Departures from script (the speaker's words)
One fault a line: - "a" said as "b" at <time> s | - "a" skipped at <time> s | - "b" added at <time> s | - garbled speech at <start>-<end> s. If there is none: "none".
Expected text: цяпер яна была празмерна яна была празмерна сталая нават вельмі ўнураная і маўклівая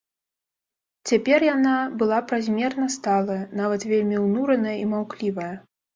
- "яна была празмерна" skipped at 2.9 s